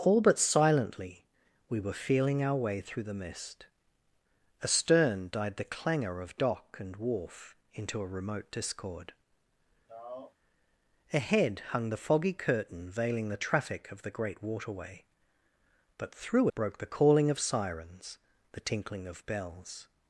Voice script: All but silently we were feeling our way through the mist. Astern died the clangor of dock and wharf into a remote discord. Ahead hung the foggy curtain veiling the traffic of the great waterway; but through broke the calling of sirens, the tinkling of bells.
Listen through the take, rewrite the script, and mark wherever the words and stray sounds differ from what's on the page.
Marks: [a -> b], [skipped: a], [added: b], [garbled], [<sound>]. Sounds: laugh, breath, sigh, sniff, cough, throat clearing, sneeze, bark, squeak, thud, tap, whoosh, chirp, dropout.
All but silently we were feeling our way through the mist. Astern died the clangor of dock and wharf into a remote discord. [sigh] Ahead hung the foggy curtain veiling the traffic of the great waterway; but through broke the calling of sirens, the tinkling of bells.